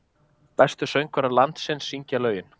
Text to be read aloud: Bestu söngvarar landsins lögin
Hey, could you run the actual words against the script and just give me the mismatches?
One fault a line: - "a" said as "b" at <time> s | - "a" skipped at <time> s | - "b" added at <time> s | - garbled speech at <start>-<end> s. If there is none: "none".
- "syngja" added at 1.9 s